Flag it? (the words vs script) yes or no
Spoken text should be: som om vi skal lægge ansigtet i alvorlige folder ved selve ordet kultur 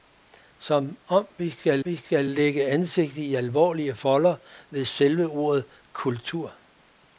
yes